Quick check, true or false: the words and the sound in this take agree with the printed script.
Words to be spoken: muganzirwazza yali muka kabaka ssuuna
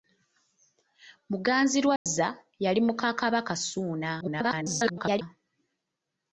false